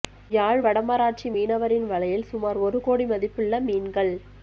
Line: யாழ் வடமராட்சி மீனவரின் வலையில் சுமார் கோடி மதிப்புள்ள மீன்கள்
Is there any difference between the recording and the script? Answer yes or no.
yes